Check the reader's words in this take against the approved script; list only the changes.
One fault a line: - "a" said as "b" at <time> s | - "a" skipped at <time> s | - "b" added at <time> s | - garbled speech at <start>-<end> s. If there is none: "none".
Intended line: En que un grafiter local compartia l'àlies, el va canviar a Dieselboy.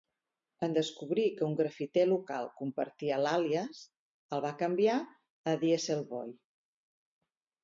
- "descobrir" added at 0.8 s